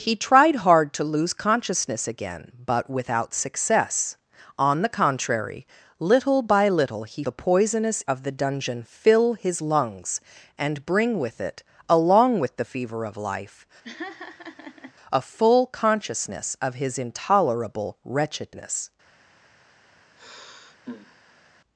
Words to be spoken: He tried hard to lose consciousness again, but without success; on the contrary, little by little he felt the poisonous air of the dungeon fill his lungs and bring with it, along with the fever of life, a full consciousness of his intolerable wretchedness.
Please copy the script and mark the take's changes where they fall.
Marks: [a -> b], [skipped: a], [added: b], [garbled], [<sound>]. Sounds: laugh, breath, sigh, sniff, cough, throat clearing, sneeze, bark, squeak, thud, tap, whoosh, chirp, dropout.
He tried hard to lose consciousness again, but without success; on the contrary, little by little he [skipped: felt] the poisonous [skipped: air] of the dungeon fill his lungs and bring with it, along with the fever of life, [laugh] a full consciousness of his intolerable wretchedness. [sigh]